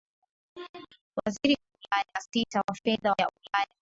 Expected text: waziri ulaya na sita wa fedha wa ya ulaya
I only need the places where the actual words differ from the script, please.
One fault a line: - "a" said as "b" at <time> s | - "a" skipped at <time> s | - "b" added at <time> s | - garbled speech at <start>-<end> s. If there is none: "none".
none